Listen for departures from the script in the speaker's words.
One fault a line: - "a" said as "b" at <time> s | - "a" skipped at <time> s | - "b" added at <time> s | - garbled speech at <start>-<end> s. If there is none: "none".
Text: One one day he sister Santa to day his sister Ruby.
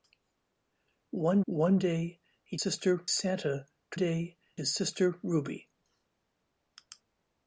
none